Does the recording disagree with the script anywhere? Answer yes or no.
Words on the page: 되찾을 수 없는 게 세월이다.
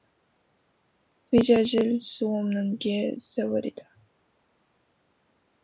no